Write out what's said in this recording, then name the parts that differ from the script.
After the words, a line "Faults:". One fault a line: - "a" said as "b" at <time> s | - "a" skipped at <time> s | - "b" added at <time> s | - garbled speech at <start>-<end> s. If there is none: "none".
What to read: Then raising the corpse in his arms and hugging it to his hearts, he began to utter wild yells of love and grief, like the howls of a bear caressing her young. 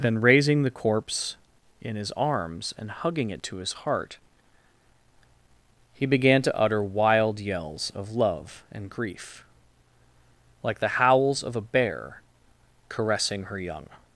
Then raising the corpse in his arms and hugging it to his heart, he began to utter wild yells of love and grief, like the howls of a bear caressing her young.
Faults:
- "hearts" said as "heart" at 3.7 s